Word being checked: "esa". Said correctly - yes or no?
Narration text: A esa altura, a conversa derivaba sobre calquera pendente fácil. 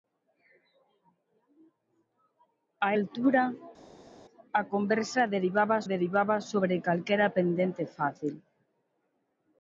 no